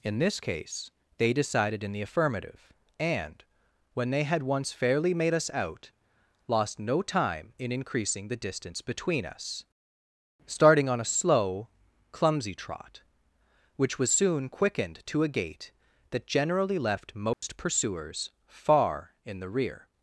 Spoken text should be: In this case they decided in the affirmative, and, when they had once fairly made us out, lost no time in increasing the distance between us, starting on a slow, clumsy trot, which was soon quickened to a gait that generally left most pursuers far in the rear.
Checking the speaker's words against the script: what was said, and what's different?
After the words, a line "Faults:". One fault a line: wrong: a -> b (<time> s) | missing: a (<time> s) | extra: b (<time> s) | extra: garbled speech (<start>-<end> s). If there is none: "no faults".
In this case they decided in the affirmative, and, when they had once fairly made us out, lost no time in increasing the distance between us, starting on a slow, clumsy trot, which was soon quickened to a gait that generally left most pursuers far in the rear.
Faults:
no faults